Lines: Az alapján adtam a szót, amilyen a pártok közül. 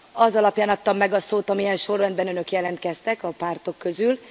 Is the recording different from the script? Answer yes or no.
yes